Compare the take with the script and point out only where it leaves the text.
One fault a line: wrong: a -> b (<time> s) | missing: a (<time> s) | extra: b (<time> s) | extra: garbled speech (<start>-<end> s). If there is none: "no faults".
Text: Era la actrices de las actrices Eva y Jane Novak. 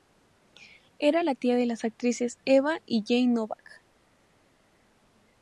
wrong: actrices -> tía (1.4 s)